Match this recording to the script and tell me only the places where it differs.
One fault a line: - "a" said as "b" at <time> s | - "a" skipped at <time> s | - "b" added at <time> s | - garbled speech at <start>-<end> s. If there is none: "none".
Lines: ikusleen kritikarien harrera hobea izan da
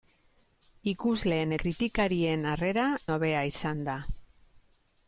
none